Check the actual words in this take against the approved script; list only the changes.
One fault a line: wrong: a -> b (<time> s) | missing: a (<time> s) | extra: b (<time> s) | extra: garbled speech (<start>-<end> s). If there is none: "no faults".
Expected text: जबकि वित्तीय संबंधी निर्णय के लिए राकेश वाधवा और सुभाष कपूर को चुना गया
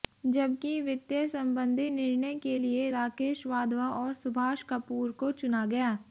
no faults